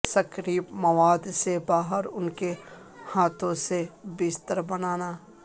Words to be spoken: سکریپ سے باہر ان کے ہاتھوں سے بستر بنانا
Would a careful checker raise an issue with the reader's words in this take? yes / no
yes